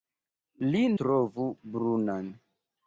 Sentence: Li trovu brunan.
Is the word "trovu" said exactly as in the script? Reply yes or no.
yes